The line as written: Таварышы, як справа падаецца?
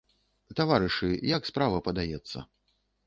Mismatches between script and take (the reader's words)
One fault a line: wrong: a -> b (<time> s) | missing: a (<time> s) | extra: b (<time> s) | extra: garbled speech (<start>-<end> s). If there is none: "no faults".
no faults